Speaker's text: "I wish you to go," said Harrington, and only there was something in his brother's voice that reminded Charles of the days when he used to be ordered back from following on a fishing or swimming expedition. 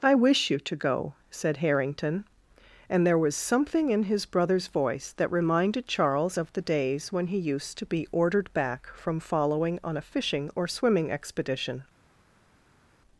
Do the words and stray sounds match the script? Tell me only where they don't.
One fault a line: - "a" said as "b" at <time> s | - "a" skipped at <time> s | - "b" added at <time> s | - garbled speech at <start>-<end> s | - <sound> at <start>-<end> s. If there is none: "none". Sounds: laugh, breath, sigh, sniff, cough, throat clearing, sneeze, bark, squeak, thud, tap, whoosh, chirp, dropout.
- "only" skipped at 3.0 s